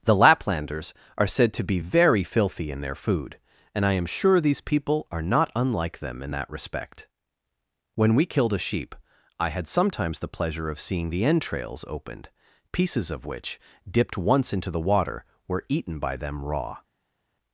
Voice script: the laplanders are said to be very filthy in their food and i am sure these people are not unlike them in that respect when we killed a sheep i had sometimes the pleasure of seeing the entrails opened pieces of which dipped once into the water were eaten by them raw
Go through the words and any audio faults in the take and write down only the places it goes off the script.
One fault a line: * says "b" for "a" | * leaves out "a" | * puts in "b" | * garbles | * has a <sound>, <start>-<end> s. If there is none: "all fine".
all fine